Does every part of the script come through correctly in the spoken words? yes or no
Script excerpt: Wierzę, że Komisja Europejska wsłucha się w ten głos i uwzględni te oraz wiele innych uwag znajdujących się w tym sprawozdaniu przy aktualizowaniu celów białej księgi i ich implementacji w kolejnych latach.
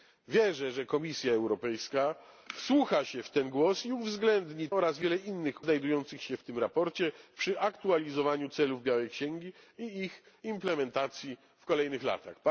no